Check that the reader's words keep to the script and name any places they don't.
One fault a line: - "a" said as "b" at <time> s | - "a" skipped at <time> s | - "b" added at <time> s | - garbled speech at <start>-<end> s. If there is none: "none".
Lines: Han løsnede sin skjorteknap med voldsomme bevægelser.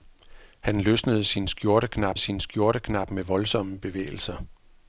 - "sin skjorteknap" added at 2.2 s